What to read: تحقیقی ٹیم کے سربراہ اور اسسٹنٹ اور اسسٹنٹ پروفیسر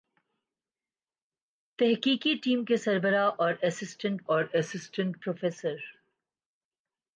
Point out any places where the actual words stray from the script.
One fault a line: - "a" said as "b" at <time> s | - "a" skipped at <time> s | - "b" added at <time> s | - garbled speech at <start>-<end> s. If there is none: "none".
none